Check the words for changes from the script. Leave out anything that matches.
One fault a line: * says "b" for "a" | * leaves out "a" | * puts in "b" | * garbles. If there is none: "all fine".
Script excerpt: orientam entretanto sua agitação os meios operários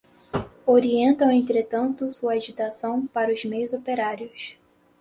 * puts in "para"